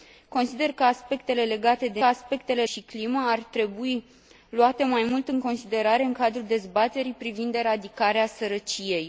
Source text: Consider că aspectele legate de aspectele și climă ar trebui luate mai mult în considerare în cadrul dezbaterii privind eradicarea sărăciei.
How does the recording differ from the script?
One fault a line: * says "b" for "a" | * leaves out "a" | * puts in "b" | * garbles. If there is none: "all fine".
all fine